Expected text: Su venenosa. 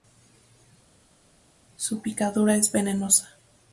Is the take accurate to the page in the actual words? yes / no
no